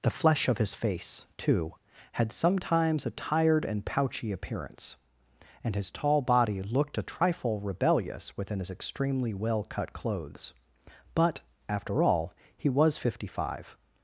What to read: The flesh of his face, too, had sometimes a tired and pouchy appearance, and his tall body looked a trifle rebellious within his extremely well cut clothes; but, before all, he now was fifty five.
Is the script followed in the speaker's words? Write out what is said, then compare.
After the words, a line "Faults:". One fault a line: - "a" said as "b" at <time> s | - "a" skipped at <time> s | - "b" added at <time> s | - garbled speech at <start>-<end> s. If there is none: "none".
The flesh of his face, too, had sometimes a tired and pouchy appearance, and his tall body looked a trifle rebellious within his extremely well cut clothes; but, after all, he was fifty five.
Faults:
- "before" said as "after" at 11.7 s
- "now" skipped at 12.7 s